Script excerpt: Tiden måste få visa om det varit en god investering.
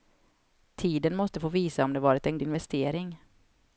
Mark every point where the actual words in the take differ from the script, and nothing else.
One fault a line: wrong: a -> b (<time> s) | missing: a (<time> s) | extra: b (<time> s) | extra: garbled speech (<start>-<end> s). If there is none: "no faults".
missing: god (2.4 s)